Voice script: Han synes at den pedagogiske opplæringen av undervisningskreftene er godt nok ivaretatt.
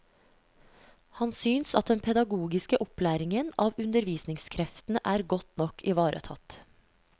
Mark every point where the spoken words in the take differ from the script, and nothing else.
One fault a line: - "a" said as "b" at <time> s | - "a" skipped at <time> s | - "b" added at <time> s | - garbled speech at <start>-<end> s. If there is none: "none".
none